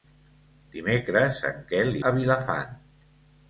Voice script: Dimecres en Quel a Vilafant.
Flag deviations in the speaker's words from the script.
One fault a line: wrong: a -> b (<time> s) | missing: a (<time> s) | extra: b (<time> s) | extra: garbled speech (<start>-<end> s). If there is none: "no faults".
no faults